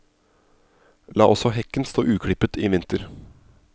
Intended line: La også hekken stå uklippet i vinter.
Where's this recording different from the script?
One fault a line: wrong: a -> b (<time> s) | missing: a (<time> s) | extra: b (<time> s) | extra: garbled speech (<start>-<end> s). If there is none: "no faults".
no faults